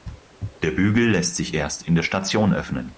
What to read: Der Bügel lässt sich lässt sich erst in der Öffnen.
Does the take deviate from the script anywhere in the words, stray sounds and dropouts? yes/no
yes